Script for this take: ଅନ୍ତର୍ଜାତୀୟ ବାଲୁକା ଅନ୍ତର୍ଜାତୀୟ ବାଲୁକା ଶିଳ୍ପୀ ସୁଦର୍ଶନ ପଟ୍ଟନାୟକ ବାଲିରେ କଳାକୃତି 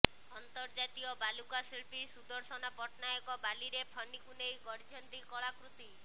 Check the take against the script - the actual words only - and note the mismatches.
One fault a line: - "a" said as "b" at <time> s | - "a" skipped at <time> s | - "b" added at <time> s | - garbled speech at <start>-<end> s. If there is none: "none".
- "ଅନ୍ତର୍ଜାତୀୟ ବାଲୁକା" skipped at 1.6 s
- "ଫନିକୁ ନେଇ ଗଢିଛନ୍ତି" added at 3.9 s